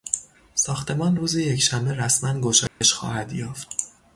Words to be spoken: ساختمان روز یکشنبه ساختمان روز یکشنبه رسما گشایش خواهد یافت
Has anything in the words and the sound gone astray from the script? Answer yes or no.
yes